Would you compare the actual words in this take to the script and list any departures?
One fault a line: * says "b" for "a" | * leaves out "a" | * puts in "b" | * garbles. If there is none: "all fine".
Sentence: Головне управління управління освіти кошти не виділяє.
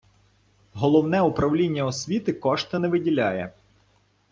* leaves out "управління"